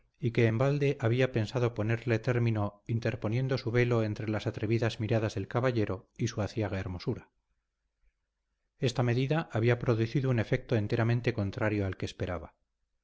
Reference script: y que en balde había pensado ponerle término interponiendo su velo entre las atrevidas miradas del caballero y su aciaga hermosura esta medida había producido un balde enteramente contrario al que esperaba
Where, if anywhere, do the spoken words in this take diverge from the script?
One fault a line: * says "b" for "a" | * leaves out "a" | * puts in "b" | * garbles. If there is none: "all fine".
* says "efecto" for "balde"